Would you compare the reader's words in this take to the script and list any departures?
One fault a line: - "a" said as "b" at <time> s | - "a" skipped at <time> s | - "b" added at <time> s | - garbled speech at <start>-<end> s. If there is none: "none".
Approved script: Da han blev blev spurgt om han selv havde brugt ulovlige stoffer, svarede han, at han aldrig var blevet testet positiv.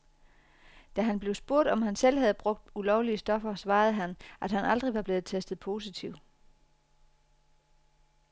- "blev" skipped at 1.4 s